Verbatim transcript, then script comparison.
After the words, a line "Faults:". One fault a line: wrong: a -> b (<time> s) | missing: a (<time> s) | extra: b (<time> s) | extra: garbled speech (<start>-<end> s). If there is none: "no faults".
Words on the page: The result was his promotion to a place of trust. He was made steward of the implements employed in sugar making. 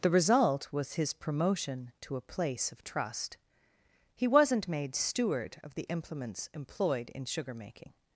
The result was his promotion to a place of trust. He wasn't made steward of the implements employed in sugar making.
Faults:
wrong: was -> wasn't (4.3 s)